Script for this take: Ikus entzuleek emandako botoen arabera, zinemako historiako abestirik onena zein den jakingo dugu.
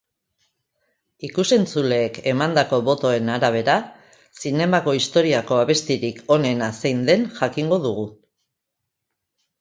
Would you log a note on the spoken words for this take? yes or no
no